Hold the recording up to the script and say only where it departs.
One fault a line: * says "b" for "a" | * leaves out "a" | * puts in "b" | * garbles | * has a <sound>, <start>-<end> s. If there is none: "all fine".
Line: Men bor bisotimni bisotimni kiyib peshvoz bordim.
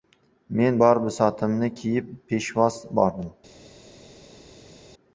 * leaves out "bisotimni"